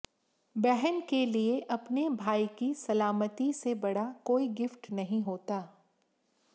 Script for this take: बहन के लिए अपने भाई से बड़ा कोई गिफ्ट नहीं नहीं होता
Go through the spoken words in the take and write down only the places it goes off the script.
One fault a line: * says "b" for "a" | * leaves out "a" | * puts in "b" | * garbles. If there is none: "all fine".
* puts in "की सलामती"
* leaves out "नहीं"